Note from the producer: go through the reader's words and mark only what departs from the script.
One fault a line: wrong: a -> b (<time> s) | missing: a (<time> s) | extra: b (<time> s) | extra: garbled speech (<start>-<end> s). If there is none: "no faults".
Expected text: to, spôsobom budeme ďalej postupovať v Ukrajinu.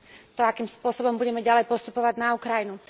extra: akým (0.4 s)
wrong: v -> na (2.2 s)